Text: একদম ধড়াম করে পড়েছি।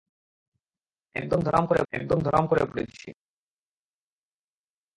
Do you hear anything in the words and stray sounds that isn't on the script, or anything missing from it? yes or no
yes